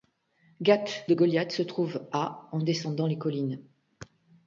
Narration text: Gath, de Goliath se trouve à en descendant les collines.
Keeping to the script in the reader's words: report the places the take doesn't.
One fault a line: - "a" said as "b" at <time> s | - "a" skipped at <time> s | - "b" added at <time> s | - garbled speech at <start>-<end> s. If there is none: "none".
none